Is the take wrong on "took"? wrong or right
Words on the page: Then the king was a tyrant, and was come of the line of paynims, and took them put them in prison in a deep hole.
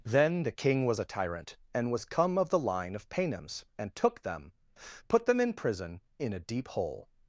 right